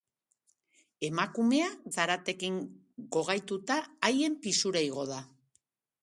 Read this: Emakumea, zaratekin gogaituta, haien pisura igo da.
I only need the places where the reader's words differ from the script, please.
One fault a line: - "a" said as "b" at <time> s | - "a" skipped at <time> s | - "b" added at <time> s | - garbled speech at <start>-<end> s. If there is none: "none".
none